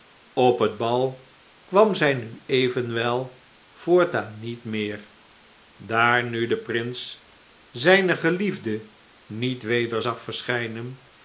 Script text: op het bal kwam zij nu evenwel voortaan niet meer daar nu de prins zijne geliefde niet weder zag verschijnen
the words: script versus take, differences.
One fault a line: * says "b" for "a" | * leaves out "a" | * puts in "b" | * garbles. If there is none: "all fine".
all fine